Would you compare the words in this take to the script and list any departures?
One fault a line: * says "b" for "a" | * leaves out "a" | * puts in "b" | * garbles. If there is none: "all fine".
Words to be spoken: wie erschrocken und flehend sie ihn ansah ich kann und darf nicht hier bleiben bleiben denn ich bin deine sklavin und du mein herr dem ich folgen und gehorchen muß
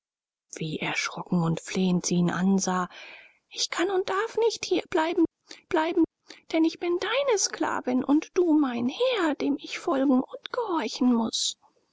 all fine